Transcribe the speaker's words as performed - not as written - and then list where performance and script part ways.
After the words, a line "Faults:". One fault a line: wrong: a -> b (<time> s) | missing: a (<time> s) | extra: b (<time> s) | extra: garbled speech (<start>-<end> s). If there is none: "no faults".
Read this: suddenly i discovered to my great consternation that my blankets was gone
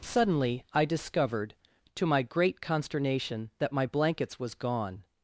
suddenly i discovered to my great consternation that my blankets was gone
Faults:
no faults